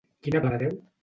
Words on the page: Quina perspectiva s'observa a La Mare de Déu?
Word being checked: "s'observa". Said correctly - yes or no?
no